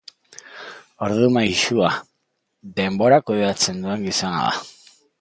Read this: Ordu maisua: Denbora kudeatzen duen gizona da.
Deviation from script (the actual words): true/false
false